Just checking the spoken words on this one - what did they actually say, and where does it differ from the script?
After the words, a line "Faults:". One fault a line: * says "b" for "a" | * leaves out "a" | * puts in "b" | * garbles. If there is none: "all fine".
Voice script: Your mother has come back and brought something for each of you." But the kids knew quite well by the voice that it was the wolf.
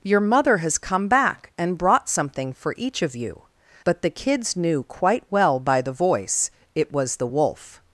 Your mother has come back and brought something for each of you." But the kids knew quite well by the voice it was the wolf.
Faults:
* leaves out "that"